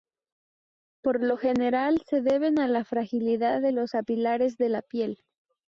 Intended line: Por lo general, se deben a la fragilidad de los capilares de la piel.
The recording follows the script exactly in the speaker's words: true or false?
true